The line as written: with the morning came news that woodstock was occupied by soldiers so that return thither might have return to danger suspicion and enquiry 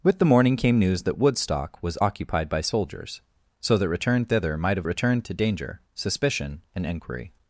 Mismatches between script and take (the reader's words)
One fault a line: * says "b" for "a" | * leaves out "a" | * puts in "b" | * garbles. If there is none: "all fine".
all fine